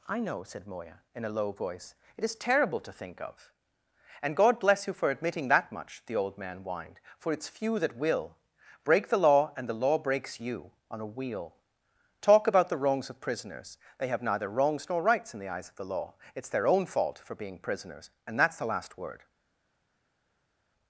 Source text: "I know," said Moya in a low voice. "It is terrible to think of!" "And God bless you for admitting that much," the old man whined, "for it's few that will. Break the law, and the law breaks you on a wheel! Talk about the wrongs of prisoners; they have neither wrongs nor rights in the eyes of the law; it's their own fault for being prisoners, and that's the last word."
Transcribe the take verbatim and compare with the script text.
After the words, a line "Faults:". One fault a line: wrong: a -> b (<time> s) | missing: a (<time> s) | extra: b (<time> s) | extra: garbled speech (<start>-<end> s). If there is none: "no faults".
"I know," said Moya in a low voice. "It is terrible to think of!" "And God bless you for admitting that much," the old man whined, "for it's few that will. Break the law, and the law breaks you on a wheel! Talk about the wrongs of prisoners; they have neither wrongs nor rights in the eyes of the law; it's their own fault for being prisoners, and that's the last word."
Faults:
no faults